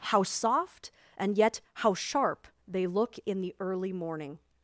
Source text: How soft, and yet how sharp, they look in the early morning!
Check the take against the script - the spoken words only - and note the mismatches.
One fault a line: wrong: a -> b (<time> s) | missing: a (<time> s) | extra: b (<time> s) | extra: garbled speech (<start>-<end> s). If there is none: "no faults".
no faults